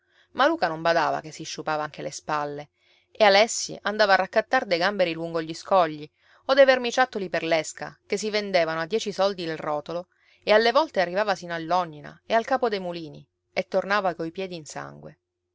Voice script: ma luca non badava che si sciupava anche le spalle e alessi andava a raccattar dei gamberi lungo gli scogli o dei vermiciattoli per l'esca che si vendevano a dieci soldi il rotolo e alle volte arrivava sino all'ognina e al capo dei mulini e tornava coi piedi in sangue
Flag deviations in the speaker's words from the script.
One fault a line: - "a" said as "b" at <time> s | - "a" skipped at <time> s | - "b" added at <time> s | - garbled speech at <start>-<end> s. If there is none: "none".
none